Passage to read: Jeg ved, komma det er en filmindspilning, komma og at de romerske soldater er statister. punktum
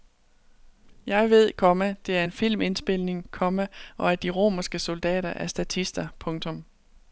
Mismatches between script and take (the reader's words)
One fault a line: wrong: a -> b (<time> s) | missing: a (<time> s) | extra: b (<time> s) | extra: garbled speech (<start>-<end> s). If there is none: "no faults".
no faults